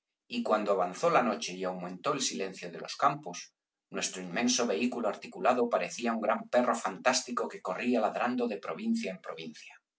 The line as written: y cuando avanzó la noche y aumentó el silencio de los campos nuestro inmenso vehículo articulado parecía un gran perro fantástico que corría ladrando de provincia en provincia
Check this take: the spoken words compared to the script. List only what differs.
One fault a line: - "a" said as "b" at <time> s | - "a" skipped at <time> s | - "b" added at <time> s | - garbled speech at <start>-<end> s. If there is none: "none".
none